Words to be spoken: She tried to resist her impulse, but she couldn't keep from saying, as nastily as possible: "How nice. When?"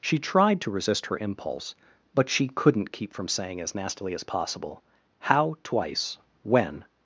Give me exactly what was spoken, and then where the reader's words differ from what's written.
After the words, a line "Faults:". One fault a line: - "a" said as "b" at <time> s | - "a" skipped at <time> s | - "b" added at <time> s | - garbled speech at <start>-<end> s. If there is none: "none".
She tried to resist her impulse, but she couldn't keep from saying, as nastily as possible: "How twice. When?"
Faults:
- "nice" said as "twice" at 5.6 s